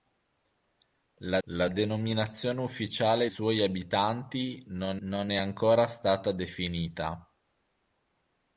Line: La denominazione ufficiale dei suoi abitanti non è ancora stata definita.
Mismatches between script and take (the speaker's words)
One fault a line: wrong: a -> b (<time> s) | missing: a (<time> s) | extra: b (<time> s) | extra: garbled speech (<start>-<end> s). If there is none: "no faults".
extra: la (1.5 s)
missing: dei (3.3 s)
extra: non (5.0 s)